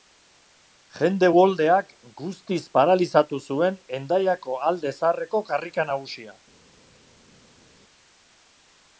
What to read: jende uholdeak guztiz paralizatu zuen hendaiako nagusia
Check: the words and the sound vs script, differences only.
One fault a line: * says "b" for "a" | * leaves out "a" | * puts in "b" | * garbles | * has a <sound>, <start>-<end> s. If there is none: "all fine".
* puts in "alde zaharreko karrika"